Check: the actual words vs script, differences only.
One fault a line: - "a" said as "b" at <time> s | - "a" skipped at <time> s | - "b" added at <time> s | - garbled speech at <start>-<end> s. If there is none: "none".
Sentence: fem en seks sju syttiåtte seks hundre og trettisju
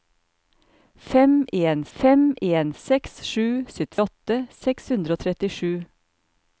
- "fem en" added at 2.0 s